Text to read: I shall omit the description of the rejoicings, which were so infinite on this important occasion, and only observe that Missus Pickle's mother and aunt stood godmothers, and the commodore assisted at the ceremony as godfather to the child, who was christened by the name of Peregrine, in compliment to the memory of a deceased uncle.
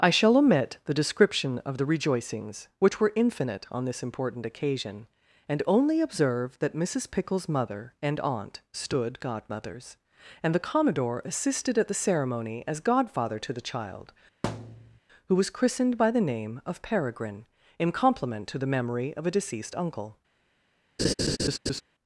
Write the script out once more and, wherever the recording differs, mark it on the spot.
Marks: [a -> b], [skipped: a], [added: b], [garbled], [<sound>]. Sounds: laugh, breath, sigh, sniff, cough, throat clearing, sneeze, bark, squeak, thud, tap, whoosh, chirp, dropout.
I shall omit the description of the rejoicings, which were [skipped: so] infinite on this important occasion, and only observe that Missus Pickle's mother and aunt stood godmothers, and the commodore assisted at the ceremony as godfather to the child, [thud] who was christened by the name of Peregrine, in compliment to the memory of a deceased uncle. [laugh]